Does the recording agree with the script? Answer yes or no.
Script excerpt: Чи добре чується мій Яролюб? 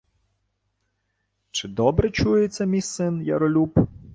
no